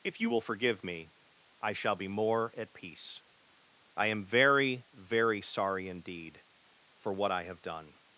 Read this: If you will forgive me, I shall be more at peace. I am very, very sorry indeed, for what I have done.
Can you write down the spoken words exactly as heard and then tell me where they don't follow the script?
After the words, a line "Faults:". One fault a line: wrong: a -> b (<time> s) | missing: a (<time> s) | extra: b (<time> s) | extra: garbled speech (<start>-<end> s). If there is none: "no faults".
If you will forgive me, I shall be more at peace. I am very, very sorry indeed, for what I have done.
Faults:
no faults